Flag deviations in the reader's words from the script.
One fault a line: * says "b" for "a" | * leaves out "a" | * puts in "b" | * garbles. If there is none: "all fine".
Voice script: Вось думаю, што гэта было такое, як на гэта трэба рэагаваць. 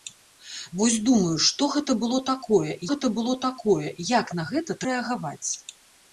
* puts in "гэта было такое"
* leaves out "трэба"